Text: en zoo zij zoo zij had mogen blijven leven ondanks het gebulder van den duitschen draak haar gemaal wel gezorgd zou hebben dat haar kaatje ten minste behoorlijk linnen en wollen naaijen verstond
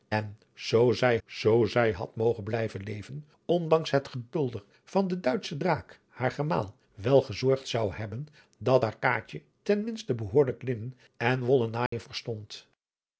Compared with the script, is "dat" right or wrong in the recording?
right